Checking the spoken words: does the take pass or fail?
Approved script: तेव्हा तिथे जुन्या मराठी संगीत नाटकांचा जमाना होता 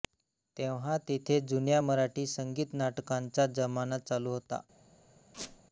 fail